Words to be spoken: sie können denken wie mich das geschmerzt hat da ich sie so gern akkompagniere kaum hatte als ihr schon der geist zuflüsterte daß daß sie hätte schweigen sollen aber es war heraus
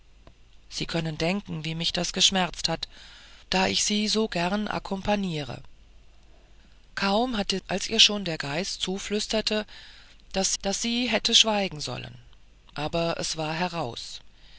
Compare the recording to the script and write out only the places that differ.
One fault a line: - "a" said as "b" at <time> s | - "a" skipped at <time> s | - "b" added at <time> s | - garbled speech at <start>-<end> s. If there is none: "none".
none